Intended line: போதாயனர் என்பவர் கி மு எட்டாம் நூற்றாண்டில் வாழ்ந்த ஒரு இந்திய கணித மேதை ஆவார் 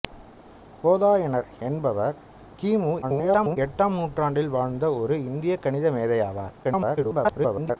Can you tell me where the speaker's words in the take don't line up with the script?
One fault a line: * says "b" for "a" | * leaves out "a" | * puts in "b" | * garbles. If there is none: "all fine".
* garbles
* garbles